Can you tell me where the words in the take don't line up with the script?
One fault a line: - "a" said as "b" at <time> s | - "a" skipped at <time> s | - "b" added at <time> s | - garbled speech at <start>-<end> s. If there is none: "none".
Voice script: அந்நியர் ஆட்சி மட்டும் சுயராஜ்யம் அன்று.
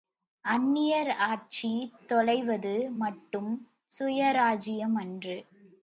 - "தொலைவது" added at 2.1 s